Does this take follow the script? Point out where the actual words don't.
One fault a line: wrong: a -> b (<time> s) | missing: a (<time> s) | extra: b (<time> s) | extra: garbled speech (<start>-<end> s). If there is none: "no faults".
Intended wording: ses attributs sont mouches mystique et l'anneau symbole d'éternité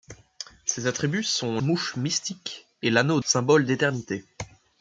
no faults